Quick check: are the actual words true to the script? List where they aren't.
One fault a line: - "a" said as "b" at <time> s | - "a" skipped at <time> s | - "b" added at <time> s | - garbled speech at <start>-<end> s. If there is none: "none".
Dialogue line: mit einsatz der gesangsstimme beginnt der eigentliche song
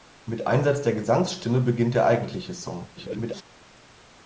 - garbled speech at 3.0-3.4 s